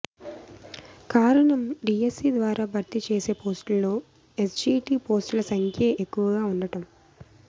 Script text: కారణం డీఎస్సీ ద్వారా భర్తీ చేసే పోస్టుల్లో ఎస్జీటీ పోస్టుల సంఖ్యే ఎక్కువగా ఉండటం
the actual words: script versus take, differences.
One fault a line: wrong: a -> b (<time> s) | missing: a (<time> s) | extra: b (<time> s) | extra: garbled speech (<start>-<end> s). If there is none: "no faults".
no faults